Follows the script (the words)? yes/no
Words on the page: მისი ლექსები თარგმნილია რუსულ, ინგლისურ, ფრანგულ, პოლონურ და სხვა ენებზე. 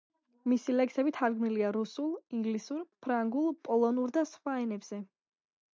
yes